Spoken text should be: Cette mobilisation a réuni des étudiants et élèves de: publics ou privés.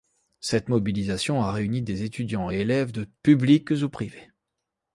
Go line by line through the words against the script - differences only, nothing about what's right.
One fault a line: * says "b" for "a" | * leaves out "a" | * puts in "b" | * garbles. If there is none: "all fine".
all fine